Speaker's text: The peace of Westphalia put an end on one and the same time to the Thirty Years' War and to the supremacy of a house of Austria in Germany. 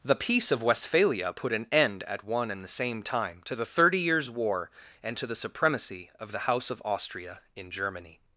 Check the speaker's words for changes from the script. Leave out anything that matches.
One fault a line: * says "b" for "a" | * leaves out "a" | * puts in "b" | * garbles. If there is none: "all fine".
* says "at" for "on"
* says "the" for "a"